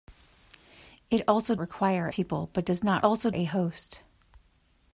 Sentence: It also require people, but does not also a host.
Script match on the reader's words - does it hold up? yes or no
yes